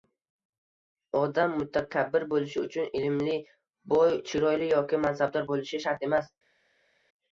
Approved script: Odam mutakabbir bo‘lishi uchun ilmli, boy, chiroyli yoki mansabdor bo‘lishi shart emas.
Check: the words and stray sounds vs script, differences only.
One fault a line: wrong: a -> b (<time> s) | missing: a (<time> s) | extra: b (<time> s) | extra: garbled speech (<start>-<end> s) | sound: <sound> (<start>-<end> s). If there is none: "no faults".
no faults